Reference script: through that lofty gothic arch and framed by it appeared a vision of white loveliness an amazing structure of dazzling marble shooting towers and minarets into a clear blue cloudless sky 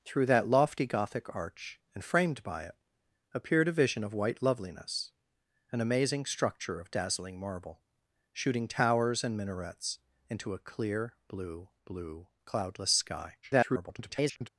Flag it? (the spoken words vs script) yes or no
yes